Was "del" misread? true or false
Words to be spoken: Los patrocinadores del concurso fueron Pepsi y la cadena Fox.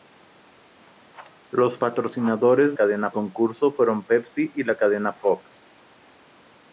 true